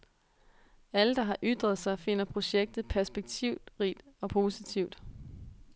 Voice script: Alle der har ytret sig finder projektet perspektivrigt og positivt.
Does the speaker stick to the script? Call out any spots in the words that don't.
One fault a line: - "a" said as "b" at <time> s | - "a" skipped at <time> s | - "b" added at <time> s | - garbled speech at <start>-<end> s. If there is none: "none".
none